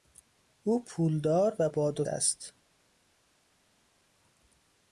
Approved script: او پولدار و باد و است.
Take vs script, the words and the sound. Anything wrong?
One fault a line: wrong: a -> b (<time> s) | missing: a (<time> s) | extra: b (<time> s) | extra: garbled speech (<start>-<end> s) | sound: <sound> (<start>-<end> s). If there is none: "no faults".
no faults